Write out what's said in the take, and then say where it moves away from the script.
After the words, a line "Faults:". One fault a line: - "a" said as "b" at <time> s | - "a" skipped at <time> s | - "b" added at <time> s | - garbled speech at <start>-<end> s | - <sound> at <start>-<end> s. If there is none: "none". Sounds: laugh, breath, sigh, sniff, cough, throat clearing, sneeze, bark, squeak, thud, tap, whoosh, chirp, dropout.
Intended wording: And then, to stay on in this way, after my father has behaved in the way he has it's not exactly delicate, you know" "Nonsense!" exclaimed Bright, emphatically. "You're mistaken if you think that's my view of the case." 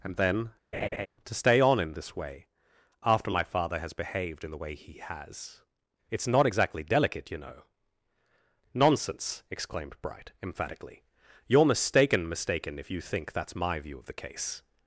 And then, to stay on in this way, after my father has behaved in the way he has it's not exactly delicate, you know" "Nonsense!" exclaimed Bright, emphatically. "You're mistaken mistaken if you think that's my view of the case."
Faults:
- laugh at 0.7-1.1 s
- "mistaken" added at 12.3 s